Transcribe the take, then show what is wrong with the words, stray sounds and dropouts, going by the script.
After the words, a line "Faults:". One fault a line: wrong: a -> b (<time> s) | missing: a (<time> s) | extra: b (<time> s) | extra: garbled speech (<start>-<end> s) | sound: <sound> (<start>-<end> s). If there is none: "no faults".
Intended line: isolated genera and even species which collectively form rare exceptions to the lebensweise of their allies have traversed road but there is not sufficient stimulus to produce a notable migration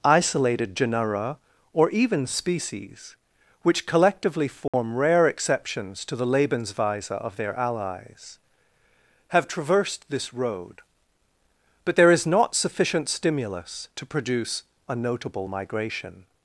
isolated genera or even species which collectively form rare exceptions to the lebensweise of their allies have traversed this road but there is not sufficient stimulus to produce a notable migration
Faults:
wrong: and -> or (1.7 s)
sound: dropout (4.7-4.7 s)
extra: this (10.1 s)